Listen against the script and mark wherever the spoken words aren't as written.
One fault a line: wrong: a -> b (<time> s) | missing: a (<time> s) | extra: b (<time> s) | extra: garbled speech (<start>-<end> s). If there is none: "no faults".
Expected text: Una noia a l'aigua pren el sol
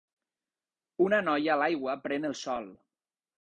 no faults